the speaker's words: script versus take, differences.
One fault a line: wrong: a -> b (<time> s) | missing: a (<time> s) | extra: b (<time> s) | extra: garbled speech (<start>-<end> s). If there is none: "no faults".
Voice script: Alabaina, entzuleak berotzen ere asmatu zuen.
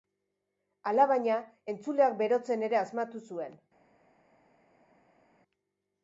no faults